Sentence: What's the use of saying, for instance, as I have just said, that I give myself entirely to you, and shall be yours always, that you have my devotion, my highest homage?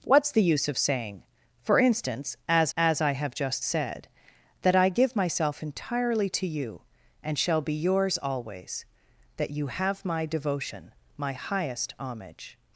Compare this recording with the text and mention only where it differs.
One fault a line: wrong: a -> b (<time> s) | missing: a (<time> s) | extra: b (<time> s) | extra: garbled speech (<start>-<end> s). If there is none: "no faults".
extra: as (2.8 s)